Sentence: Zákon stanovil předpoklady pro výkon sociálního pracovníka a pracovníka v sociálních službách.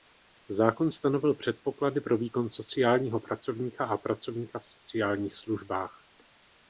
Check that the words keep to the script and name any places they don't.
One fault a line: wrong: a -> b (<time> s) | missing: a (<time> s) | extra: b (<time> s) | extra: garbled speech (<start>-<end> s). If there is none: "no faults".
no faults